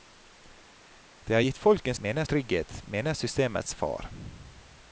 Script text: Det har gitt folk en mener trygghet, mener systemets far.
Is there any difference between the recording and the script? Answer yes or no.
no